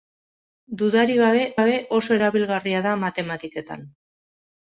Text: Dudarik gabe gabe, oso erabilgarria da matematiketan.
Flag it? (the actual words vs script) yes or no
no